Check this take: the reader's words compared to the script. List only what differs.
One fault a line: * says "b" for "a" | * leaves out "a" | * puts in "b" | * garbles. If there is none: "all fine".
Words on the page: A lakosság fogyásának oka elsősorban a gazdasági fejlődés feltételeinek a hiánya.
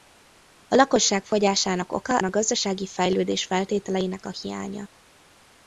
* leaves out "elsősorban"